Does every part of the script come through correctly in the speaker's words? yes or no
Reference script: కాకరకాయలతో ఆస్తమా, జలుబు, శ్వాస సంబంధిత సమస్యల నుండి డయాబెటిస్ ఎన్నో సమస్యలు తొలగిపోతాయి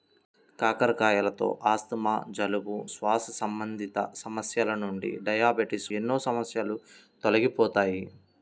yes